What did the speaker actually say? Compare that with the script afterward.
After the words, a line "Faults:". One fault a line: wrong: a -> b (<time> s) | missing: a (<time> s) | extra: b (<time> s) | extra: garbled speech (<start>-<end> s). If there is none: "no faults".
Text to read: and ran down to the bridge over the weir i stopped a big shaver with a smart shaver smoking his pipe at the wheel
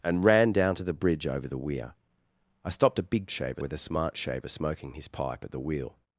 and ran down to the bridge over the weir i stopped a big shaver with a smart shaver smoking his pipe at the wheel
Faults:
no faults